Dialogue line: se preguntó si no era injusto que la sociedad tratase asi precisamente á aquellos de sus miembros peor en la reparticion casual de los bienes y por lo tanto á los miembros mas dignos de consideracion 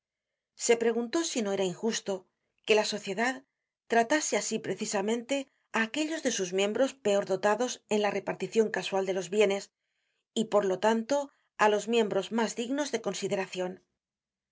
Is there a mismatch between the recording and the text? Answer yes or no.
yes